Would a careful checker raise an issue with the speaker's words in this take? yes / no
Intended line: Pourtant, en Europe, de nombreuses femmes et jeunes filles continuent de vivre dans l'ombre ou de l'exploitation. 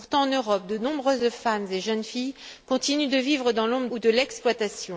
no